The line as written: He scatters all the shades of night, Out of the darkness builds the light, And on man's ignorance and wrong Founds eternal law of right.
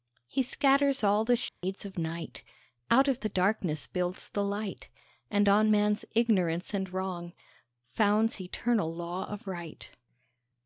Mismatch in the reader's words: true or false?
false